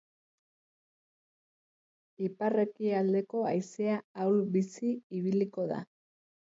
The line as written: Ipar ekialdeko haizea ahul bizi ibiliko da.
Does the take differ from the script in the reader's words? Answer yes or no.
no